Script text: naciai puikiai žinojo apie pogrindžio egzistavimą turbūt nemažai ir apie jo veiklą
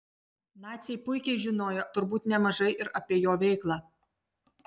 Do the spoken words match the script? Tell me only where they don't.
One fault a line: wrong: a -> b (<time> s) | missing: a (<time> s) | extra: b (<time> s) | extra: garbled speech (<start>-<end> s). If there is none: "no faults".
missing: apie pogrindžio egzistavimą (1.8 s)